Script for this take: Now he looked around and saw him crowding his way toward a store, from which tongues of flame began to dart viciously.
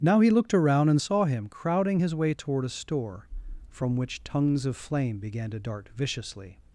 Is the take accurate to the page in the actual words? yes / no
yes